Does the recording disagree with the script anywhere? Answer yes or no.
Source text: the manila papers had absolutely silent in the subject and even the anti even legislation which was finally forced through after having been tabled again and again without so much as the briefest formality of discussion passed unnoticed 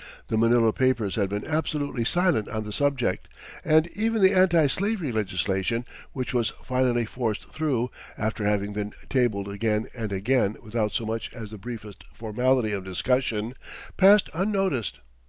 yes